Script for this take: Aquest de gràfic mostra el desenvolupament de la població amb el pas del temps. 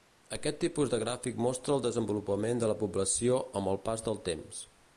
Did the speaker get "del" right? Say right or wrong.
right